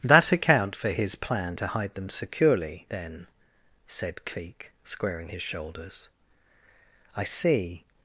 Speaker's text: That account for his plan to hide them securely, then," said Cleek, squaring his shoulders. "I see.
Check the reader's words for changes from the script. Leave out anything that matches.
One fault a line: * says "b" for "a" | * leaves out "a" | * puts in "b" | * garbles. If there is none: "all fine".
all fine